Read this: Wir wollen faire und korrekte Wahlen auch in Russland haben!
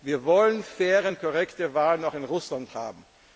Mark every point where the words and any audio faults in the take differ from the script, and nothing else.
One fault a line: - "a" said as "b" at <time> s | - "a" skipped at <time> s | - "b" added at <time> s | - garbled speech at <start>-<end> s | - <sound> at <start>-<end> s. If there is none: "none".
none